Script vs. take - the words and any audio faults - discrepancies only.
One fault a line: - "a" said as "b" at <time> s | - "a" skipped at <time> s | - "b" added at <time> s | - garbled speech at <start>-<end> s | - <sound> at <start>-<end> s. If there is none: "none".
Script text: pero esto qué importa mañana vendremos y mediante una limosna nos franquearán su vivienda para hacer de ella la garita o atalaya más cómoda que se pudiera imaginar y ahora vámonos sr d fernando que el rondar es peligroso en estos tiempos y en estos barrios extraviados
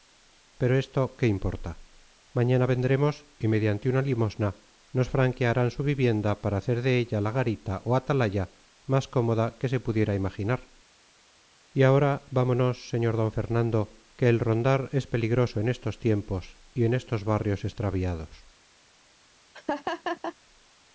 - laugh at 19.5-20.4 s